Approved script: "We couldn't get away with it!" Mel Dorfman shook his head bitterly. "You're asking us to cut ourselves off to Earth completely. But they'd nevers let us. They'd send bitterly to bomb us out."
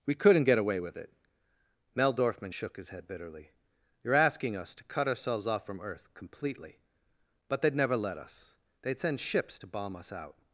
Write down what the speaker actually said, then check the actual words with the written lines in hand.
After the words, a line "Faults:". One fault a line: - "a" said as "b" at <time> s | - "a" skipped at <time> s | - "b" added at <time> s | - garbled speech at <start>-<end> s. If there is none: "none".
"We couldn't get away with it!" Mel Dorfman shook his head bitterly. "You're asking us to cut ourselves off from Earth completely. But they'd never let us. They'd send ships to bomb us out."
Faults:
- "to" said as "from" at 5.7 s
- "nevers" said as "never" at 7.7 s
- "bitterly" said as "ships" at 9.2 s